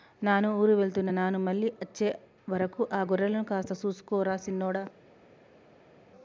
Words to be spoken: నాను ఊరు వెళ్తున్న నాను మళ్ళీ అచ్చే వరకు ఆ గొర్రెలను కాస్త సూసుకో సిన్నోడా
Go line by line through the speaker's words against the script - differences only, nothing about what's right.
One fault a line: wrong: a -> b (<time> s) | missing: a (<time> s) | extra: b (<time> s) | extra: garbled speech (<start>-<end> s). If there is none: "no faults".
extra: రా (4.2 s)